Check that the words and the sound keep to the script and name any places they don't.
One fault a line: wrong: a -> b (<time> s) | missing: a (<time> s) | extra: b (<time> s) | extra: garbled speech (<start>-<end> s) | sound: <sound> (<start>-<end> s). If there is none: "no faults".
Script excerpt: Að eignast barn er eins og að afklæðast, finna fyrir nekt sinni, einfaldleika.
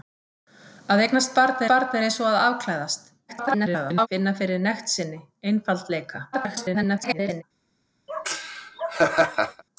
extra: barn (1.7 s)
extra: garbled speech (3.3-4.1 s)
extra: garbled speech (6.3-7.4 s)
sound: laugh (8.1-9.6 s)